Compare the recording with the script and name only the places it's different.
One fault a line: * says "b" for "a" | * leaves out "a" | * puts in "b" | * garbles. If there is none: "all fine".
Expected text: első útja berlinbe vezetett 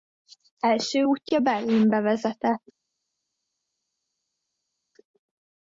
all fine